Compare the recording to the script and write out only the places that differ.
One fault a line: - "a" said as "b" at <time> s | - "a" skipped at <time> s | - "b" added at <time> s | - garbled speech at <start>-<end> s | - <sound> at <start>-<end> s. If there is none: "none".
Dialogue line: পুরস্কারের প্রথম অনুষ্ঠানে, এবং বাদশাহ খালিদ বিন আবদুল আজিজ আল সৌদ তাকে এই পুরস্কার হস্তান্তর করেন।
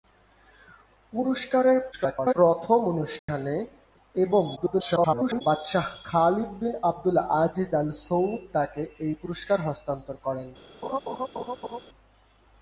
- garbled speech at 1.9-2.3 s
- dropout at 3.2-3.3 s
- garbled speech at 4.6-5.4 s
- laugh at 10.8-11.8 s